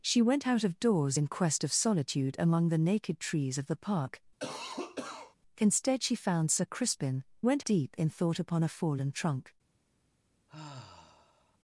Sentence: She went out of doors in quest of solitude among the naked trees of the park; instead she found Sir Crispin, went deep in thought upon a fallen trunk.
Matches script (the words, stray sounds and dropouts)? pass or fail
fail